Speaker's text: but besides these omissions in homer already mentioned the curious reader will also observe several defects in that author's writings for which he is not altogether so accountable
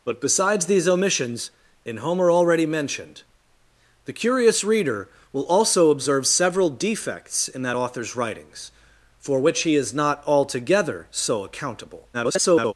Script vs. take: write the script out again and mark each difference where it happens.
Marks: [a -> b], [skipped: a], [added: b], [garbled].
but besides these omissions in homer already mentioned the curious reader will also observe several defects in that author's writings for which he is not altogether so accountable [garbled]